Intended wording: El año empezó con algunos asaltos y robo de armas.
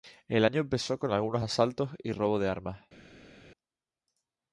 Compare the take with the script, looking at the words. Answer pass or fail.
pass